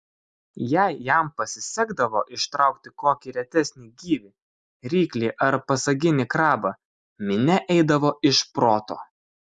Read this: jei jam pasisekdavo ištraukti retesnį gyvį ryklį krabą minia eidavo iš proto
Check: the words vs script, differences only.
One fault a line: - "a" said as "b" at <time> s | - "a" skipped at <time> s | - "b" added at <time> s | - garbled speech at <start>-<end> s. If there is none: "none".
- "kokį" added at 3.0 s
- "ar pasaginį" added at 5.5 s